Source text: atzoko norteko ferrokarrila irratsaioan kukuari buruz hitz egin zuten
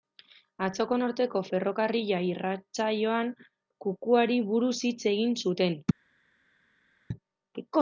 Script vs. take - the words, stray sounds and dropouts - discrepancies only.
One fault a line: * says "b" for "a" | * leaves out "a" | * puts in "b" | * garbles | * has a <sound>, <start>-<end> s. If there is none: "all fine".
all fine